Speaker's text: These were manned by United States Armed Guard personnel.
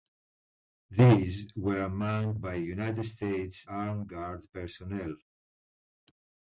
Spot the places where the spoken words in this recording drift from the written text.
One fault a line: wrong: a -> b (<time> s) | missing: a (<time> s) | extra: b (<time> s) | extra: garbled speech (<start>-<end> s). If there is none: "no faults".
no faults